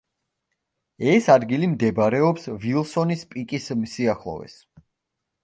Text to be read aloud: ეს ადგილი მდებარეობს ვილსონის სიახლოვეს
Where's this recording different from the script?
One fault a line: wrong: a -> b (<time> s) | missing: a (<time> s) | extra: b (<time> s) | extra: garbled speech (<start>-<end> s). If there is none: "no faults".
extra: პიკის (3.4 s)